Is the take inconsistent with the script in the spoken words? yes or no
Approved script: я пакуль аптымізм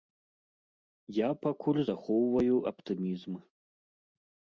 yes